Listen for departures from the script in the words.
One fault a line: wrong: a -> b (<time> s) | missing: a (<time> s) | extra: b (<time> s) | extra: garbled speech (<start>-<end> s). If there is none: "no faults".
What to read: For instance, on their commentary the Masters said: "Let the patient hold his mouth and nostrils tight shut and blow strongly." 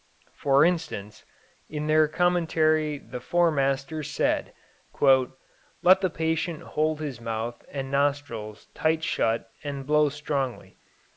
wrong: on -> in (1.7 s)
extra: Four (3.2 s)